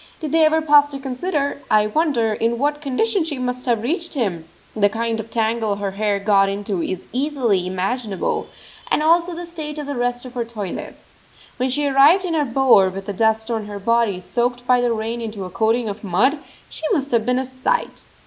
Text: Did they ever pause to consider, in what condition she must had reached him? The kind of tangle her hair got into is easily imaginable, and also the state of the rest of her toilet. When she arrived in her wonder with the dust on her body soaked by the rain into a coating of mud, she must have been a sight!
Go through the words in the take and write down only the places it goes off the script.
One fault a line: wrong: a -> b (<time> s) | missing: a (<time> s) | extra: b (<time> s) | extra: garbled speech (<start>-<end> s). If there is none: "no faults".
extra: I wonder (1.7 s)
wrong: had -> have (3.6 s)
wrong: wonder -> bower (12.4 s)